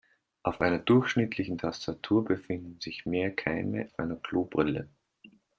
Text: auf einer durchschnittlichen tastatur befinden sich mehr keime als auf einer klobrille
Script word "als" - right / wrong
wrong